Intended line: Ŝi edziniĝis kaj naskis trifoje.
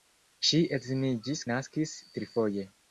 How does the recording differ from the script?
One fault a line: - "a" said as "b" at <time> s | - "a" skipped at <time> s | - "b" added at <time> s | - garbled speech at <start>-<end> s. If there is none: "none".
- "kaj" skipped at 1.4 s